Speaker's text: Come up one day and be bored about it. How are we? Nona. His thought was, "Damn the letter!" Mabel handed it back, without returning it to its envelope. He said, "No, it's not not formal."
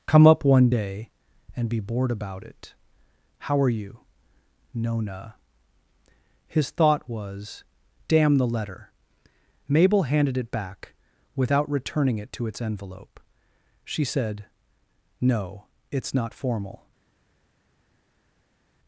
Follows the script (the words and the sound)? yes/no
no